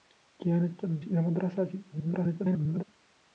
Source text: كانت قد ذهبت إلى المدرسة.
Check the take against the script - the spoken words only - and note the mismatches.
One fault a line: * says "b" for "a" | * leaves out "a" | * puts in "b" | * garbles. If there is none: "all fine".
* leaves out "ذهبت"
* garbles